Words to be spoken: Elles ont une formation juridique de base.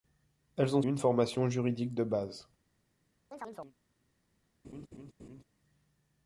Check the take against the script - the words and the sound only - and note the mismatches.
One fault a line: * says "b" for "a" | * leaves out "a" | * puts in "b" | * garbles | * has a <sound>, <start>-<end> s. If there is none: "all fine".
* has a chirp, 3.3-3.8 s
* has a laugh, 4.6-5.4 s